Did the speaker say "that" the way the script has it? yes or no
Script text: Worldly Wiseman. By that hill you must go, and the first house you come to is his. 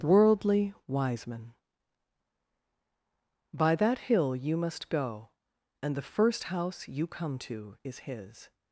yes